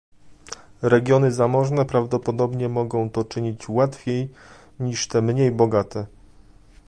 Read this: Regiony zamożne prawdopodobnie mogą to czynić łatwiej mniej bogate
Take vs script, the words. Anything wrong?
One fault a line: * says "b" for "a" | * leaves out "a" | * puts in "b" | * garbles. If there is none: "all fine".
* puts in "niż te"